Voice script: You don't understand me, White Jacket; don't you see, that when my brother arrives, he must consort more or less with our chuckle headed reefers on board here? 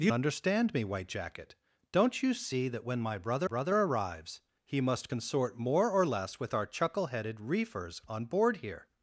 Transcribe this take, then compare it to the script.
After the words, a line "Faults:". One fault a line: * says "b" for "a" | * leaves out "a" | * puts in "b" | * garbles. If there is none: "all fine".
You understand me, White Jacket; don't you see, that when my brother brother arrives, he must consort more or less with our chuckle headed reefers on board here?
Faults:
* leaves out "don't"
* puts in "brother"